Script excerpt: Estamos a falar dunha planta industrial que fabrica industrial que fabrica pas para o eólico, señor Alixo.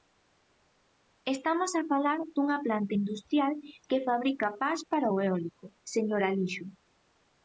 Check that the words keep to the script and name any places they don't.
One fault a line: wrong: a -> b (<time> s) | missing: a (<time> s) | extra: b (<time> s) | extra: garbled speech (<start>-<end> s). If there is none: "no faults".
missing: industrial que fabrica (4.5 s)